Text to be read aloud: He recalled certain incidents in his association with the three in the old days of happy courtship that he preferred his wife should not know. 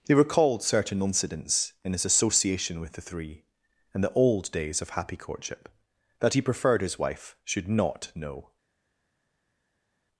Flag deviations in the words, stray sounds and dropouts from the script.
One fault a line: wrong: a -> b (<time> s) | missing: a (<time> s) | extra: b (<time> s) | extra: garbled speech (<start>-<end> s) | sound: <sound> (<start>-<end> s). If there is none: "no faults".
no faults